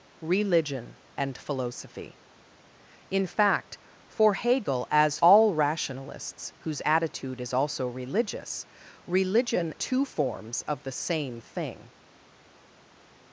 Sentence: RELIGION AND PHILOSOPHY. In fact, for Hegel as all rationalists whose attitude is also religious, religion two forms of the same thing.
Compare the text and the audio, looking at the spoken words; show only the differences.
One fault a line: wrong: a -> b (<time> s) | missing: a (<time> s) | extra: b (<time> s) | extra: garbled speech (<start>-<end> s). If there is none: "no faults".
no faults